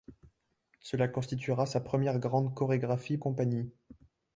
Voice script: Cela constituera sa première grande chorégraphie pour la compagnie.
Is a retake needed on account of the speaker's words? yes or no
yes